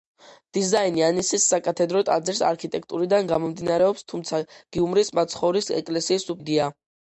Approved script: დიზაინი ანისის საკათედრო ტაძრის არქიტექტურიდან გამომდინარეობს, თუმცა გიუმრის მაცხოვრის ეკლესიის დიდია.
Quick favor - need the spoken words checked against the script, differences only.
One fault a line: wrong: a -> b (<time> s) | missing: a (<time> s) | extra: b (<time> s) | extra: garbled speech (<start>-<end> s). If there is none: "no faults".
no faults